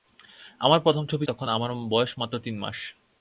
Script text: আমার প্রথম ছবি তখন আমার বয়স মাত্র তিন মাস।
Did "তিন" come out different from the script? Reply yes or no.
no